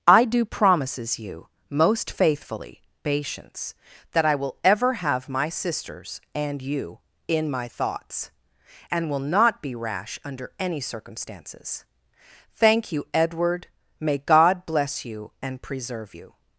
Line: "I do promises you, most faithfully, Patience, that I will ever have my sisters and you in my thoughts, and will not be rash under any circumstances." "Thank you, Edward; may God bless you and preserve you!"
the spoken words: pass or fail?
pass